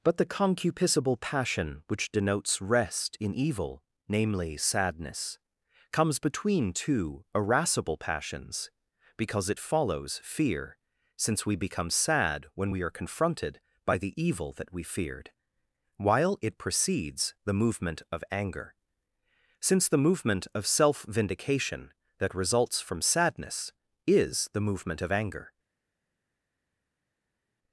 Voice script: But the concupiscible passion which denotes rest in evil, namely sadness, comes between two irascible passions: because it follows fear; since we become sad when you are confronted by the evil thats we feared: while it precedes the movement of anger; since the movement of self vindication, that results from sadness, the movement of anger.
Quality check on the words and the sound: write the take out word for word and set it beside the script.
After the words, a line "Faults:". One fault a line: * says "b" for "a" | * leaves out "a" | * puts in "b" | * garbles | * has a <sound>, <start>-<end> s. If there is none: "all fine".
But the concupiscible passion which denotes rest in evil, namely sadness, comes between two irascible passions: because it follows fear; since we become sad when we are confronted by the evil that we feared: while it precedes the movement of anger; since the movement of self vindication, that results from sadness, is the movement of anger.
Faults:
* says "we" for "you"
* says "that" for "thats"
* puts in "is"